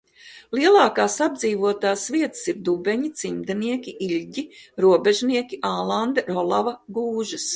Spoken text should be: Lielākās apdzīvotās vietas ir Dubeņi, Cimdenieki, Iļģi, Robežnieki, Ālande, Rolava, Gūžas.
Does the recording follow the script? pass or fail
pass